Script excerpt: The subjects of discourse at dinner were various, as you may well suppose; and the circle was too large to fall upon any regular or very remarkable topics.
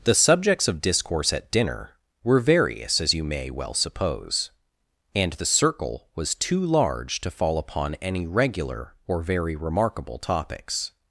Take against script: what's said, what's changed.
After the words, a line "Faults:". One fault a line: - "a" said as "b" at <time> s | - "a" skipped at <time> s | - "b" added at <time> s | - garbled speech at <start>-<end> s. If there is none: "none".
The subjects of discourse at dinner were various, as you may well suppose; and the circle was too large to fall upon any regular or very remarkable topics.
Faults:
none